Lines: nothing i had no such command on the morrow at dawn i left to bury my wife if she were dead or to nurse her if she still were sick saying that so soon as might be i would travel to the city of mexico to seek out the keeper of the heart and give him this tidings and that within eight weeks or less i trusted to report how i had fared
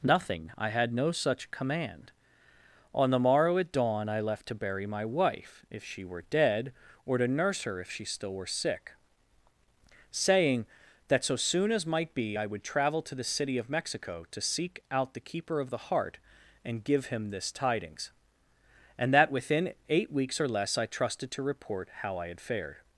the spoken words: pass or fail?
pass